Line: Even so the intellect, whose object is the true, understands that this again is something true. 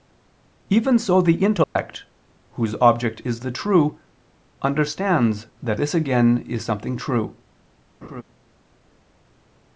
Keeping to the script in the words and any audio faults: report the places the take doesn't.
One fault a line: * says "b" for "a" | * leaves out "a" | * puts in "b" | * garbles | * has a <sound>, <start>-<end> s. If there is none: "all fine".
* has a dropout, 1.6-1.8 s
* has a laugh, 8.0-8.2 s